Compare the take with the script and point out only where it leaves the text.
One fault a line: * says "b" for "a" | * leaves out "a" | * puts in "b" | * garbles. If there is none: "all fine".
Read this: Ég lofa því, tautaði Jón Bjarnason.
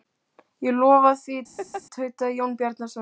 all fine